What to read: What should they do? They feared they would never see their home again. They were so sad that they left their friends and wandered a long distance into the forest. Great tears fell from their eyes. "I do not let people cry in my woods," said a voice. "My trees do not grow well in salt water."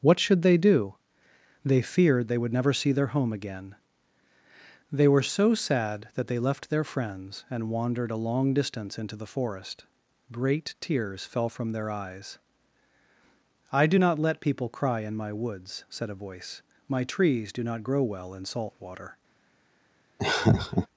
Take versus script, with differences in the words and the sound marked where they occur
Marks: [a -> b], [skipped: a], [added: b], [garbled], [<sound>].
What should they do? They feared they would never see their home again. They were so sad that they left their friends and wandered a long distance into the forest. Great tears fell from their eyes. "I do not let people cry in my woods," said a voice. "My trees do not grow well in salt water." [laugh]